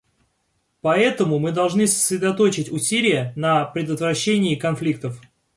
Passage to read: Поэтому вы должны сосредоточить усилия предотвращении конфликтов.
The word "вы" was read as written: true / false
false